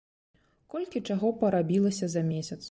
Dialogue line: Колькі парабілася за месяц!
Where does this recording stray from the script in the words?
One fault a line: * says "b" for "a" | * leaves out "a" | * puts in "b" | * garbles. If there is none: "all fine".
* puts in "чаго"